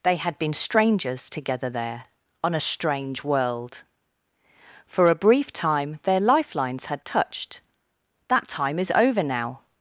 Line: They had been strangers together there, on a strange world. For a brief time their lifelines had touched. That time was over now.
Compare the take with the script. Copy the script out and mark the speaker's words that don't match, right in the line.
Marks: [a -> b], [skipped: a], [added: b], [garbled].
They had been strangers together there, on a strange world. For a brief time their lifelines had touched. That time [was -> is] over now.